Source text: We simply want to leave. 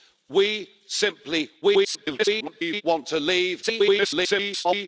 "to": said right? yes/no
yes